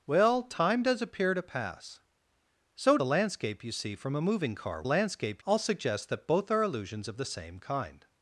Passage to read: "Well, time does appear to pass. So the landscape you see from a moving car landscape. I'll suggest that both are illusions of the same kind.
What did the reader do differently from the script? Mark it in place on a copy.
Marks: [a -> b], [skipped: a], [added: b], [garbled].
"Well, time does appear to pass. So the landscape you see from a moving car landscape. I'll suggest that both are illusions of the same kind.